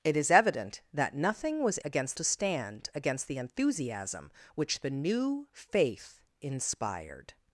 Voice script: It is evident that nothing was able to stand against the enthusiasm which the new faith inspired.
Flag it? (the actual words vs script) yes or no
yes